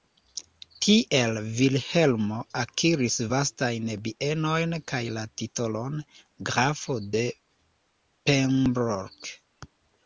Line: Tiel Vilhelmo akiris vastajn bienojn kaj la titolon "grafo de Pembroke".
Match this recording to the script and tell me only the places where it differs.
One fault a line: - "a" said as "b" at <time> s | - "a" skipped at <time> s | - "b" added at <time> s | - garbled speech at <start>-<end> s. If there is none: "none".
none